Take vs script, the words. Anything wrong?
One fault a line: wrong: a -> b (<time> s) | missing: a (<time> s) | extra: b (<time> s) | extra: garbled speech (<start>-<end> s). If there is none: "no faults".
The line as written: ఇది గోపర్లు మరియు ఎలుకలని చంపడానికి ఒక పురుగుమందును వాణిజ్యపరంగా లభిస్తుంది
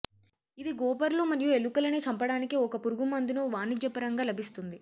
no faults